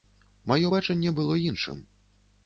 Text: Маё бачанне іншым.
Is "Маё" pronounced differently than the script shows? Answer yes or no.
no